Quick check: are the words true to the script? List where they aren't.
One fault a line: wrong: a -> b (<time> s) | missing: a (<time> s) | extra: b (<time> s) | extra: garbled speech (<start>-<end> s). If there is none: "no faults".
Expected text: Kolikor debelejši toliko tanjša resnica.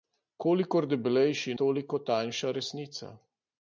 no faults